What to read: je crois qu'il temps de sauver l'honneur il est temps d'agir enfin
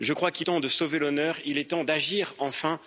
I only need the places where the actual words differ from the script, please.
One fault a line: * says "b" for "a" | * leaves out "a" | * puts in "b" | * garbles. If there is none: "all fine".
all fine